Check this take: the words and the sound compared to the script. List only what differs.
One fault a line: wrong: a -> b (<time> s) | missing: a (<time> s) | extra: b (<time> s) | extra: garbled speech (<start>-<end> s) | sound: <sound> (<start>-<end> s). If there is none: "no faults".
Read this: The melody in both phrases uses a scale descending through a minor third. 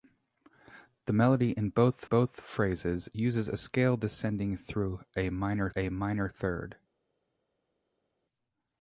extra: both (2.0 s)
extra: a minor (5.8 s)